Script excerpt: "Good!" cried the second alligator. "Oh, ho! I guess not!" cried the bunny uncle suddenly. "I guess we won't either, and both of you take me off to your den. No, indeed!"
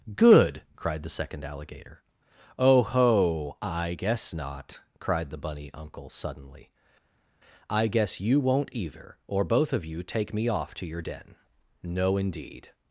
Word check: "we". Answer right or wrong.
wrong